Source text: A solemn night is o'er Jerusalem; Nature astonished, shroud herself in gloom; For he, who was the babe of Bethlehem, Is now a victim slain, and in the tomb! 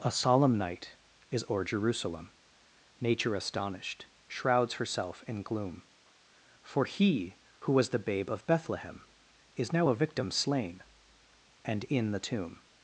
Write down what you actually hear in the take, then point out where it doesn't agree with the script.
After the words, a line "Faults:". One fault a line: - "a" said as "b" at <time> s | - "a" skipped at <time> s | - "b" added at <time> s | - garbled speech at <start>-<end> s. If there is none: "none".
A solemn night is o'er Jerusalem; Nature astonished, shrouds herself in gloom; For he, who was the babe of Bethlehem, Is now a victim slain, and in the tomb!
Faults:
- "shroud" said as "shrouds" at 4.3 s